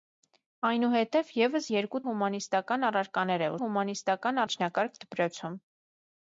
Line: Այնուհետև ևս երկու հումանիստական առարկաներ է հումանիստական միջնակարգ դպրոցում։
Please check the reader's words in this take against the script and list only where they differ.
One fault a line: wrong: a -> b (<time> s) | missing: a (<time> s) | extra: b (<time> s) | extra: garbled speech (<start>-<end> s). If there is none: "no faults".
no faults